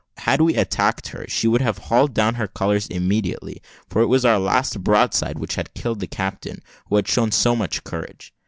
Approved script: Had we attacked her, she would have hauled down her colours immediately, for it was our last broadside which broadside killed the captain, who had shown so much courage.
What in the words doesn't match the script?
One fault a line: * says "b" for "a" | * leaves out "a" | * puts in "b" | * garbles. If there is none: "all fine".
* says "had" for "broadside"